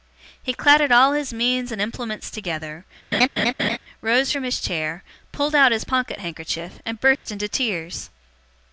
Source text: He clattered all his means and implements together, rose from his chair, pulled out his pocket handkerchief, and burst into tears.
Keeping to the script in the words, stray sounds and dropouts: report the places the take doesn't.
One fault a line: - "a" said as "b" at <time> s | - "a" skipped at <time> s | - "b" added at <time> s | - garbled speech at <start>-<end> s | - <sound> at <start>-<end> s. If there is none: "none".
- laugh at 3.1-3.8 s
- dropout at 7.2-7.3 s